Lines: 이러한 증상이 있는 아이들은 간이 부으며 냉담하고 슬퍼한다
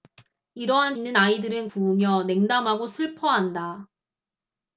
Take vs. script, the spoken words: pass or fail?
fail